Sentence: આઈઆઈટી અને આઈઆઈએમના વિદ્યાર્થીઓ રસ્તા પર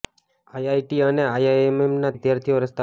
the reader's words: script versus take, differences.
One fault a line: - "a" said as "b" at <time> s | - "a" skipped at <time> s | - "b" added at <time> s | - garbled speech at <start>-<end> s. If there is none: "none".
none